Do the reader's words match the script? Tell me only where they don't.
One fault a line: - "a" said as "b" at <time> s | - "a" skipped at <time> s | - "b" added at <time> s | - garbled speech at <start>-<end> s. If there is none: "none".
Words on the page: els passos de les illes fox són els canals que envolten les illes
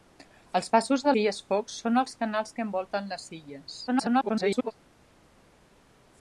- "les" skipped at 1.1 s
- garbled speech at 3.9-4.7 s